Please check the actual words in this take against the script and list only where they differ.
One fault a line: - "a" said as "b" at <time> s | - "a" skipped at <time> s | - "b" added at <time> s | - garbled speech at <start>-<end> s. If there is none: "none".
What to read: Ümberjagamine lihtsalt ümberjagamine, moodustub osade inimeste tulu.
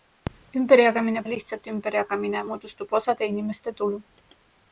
none